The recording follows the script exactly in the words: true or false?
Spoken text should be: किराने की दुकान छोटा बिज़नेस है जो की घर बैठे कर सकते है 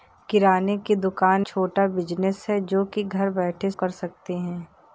true